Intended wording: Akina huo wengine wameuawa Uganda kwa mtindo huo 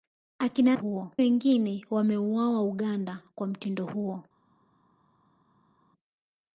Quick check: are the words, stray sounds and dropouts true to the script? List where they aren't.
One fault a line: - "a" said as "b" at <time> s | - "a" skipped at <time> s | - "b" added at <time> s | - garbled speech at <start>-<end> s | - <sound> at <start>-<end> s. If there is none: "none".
none